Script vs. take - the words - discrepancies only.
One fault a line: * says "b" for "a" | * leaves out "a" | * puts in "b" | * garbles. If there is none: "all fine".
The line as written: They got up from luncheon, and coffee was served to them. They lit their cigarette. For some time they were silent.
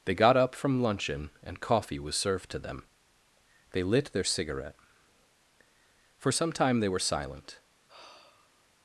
all fine